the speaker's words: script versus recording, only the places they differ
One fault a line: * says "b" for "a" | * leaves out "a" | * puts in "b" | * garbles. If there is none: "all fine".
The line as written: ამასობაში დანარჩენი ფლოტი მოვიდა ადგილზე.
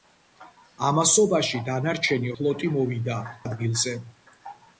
all fine